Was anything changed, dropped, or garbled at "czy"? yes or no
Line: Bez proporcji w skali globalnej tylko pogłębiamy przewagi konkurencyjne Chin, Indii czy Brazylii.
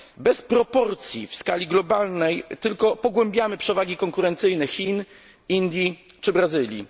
no